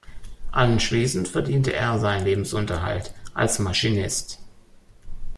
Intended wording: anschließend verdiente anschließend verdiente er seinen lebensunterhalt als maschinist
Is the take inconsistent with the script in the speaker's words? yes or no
yes